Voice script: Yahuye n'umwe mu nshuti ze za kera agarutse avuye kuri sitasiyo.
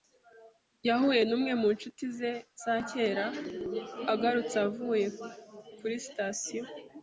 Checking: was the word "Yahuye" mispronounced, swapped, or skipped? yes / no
no